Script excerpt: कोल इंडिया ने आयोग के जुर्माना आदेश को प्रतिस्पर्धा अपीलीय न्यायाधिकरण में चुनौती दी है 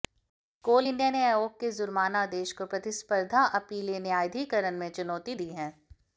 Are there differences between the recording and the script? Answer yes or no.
no